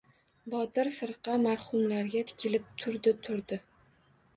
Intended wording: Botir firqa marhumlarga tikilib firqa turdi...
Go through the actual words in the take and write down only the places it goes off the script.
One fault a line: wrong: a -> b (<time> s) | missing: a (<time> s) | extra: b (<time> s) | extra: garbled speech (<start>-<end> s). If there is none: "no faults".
wrong: firqa -> turdi (2.8 s)